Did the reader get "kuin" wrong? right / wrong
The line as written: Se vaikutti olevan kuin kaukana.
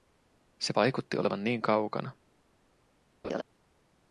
wrong